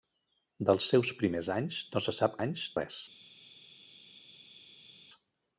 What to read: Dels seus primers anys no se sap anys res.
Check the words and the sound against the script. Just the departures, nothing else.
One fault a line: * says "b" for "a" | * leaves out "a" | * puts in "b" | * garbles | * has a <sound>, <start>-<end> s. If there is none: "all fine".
all fine